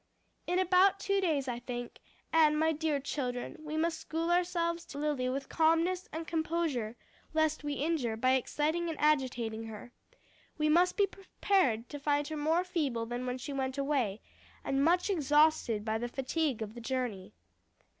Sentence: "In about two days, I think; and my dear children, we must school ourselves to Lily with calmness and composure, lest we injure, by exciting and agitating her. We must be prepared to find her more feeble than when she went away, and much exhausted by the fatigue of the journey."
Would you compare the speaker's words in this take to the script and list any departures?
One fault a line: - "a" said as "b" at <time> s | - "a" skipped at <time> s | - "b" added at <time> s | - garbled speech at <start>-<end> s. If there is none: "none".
none